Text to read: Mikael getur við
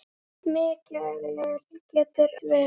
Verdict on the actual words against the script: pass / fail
pass